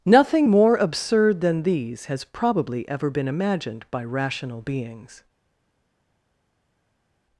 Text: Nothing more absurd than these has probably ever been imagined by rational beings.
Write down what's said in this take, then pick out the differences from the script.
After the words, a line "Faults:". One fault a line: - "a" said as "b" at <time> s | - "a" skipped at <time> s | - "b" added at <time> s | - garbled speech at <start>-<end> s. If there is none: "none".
Nothing more absurd than these has probably ever been imagined by rational beings.
Faults:
none